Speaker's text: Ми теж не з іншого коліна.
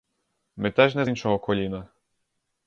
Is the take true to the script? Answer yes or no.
yes